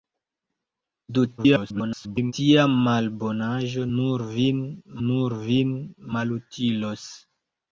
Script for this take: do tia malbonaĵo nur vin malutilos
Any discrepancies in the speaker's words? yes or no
yes